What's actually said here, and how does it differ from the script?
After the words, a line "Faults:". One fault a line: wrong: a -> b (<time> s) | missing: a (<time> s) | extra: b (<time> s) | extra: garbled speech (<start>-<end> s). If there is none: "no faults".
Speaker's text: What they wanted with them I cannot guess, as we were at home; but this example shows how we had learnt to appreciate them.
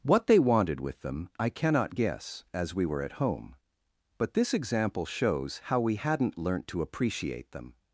What they wanted with them I cannot guess, as we were at home; but this example shows how we hadn't learnt to appreciate them.
Faults:
wrong: had -> hadn't (6.0 s)